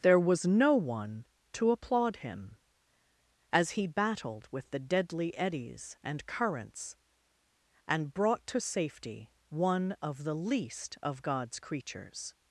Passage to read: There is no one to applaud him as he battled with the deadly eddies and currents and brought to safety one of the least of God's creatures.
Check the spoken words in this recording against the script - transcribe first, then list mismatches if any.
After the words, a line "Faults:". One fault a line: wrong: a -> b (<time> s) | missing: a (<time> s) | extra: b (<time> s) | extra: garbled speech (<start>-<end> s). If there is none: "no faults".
There was no one to applaud him as he battled with the deadly eddies and currents and brought to safety one of the least of God's creatures.
Faults:
wrong: is -> was (0.2 s)